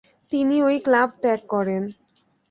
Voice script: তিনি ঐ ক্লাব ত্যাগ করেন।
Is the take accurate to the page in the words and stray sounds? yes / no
yes